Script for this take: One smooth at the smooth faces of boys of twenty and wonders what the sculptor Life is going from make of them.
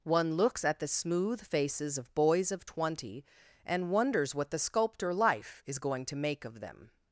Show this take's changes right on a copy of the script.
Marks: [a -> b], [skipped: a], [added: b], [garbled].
One [smooth -> looks] at the smooth faces of boys of twenty and wonders what the sculptor Life is going [from -> to] make of them.